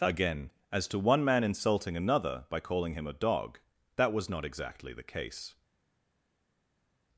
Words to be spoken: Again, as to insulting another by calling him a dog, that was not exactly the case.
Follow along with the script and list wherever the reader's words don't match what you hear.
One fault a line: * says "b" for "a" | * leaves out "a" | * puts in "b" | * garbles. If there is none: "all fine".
* puts in "one man"